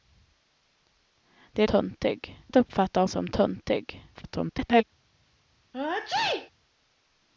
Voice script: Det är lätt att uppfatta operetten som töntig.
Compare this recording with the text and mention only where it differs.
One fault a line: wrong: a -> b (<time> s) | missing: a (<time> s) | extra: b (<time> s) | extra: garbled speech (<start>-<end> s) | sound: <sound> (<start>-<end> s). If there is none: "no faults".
wrong: lätt -> töntig (1.6 s)
missing: operetten (3.0 s)
extra: garbled speech (4.1-4.8 s)
sound: sneeze (5.7-6.5 s)